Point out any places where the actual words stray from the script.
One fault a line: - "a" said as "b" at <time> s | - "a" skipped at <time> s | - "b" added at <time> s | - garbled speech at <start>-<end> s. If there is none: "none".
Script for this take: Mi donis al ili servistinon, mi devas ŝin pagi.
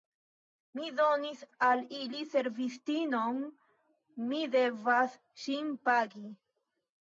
none